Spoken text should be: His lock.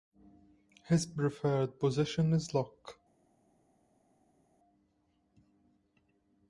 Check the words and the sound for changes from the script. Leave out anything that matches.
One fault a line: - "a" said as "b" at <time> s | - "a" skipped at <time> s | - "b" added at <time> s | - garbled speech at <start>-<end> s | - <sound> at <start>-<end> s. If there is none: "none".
- "preferred position is" added at 1.1 s